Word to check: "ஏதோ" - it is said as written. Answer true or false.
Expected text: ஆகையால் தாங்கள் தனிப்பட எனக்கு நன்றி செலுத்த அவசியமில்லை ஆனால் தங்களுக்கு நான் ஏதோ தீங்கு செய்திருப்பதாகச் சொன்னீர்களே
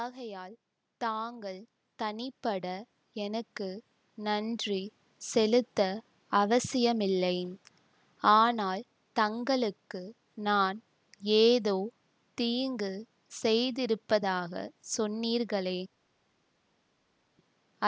true